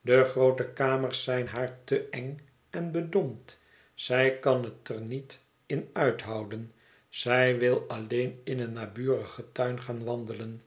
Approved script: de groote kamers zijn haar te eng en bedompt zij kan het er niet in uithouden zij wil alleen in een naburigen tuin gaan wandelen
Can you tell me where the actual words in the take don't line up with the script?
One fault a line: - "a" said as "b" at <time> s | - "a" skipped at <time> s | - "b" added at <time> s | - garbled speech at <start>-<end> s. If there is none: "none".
none